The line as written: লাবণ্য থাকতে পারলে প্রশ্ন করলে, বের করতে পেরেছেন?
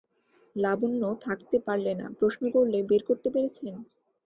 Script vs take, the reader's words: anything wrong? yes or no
yes